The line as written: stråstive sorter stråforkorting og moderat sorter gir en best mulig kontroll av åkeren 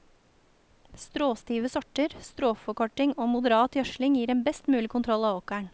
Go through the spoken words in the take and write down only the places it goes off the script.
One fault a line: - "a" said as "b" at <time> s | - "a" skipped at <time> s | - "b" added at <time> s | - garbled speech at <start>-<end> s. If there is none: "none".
- "sorter" said as "gjødsling" at 3.8 s